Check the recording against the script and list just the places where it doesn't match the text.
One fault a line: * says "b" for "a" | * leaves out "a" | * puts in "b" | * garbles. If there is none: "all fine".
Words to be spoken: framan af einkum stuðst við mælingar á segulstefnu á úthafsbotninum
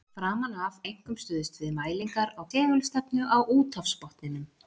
all fine